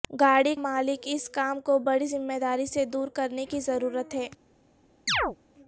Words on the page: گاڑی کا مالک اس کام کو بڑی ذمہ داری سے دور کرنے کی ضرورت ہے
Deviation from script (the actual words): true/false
true